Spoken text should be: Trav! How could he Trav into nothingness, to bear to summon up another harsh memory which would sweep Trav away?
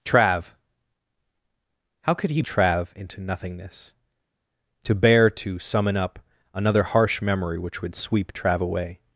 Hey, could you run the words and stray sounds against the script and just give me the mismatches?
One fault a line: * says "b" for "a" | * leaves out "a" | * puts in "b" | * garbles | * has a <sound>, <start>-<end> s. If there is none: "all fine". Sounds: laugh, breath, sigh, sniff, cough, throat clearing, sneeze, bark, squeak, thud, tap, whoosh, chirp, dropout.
all fine